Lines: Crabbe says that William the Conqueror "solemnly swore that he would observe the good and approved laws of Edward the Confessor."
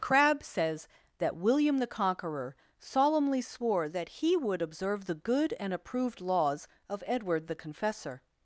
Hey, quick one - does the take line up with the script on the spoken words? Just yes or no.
yes